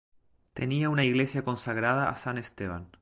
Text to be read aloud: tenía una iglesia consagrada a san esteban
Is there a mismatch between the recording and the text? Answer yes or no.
no